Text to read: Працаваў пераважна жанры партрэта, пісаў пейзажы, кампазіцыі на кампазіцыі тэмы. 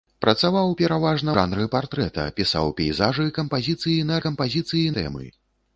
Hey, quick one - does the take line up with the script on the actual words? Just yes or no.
yes